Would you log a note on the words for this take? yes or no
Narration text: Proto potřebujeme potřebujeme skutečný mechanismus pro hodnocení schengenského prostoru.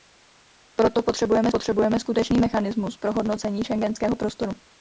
no